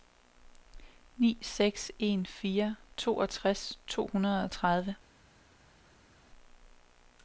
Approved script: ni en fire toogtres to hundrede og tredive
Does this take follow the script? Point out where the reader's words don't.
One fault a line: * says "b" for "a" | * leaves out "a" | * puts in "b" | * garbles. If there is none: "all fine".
* puts in "seks"